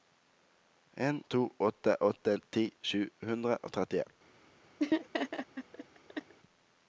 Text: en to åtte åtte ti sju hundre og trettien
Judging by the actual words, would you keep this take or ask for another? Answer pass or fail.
pass